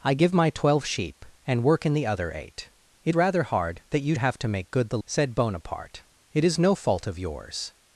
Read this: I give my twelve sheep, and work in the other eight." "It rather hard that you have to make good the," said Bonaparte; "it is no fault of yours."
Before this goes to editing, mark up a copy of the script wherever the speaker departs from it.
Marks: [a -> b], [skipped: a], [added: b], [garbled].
I give my twelve sheep, and work in the other eight." "It rather hard that you have to make good the," said Bonaparte; "it is no fault of yours."